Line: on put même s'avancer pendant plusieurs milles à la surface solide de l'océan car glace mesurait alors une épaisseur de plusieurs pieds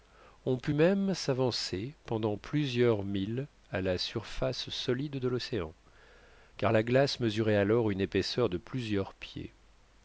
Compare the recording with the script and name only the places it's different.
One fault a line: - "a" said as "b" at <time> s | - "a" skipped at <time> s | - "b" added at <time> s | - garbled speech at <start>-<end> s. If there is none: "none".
- "la" added at 6.7 s